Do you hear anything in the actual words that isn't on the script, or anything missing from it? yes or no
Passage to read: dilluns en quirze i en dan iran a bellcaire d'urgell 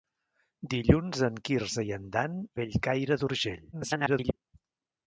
yes